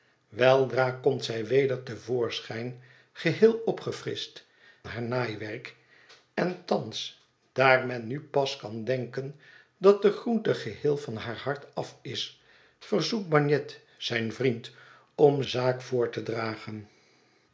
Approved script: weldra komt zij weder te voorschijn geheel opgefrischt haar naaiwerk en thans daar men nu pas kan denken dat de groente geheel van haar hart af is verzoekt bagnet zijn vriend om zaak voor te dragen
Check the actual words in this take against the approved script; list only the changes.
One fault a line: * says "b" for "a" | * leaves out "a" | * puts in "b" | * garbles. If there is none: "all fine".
all fine